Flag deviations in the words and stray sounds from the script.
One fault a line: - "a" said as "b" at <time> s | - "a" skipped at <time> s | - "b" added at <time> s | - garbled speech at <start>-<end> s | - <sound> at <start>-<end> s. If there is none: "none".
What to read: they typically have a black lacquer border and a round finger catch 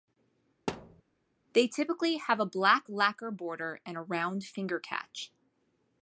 - thud at 0.7-1.0 s